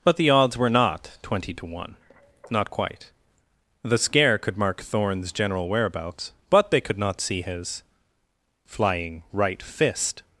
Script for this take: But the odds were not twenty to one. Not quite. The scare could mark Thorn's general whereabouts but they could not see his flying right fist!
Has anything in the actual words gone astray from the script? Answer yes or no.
no